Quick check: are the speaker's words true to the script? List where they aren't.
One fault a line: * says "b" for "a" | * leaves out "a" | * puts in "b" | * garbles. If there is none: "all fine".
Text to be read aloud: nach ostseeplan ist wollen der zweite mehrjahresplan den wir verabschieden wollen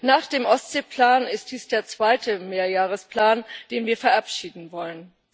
* puts in "dem"
* says "dies" for "wollen"